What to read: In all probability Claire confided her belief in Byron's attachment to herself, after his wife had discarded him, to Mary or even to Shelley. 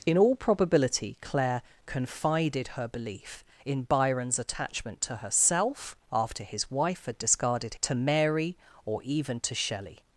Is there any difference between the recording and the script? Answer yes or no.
yes